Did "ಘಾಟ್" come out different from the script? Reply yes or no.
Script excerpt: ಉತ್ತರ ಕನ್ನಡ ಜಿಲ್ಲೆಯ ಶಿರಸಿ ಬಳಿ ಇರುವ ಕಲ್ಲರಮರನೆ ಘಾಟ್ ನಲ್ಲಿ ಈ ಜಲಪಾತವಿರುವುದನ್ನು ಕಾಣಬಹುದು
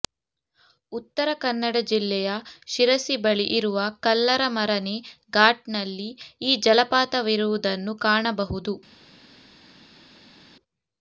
no